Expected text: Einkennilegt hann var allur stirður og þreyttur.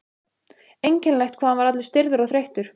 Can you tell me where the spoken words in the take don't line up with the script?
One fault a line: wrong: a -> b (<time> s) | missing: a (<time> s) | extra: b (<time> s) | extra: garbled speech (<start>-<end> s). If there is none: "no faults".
extra: hvað (1.4 s)